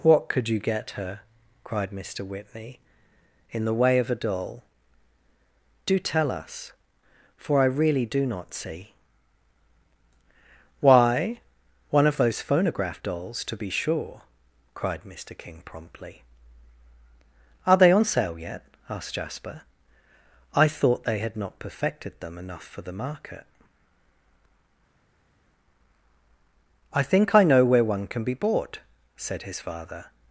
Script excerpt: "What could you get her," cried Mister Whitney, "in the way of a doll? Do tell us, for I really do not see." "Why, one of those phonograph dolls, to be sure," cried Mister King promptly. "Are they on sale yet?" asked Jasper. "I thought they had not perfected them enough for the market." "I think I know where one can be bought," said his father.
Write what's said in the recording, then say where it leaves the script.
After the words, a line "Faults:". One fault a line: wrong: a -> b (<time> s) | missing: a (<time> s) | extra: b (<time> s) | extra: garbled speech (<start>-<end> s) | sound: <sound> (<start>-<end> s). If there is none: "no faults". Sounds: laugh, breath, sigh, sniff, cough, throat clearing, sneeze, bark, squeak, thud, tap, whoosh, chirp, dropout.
"What could you get her," cried Mister Whitney, "in the way of a doll? Do tell us, for I really do not see." "Why, one of those phonograph dolls, to be sure," cried Mister King promptly. "Are they on sale yet?" asked Jasper. "I thought they had not perfected them enough for the market." "I think I know where one can be bought," said his father.
Faults:
no faults